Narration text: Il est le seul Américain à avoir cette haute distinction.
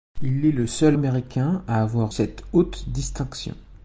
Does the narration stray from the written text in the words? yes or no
no